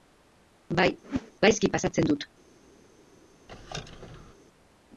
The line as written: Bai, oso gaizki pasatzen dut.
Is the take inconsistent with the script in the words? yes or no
yes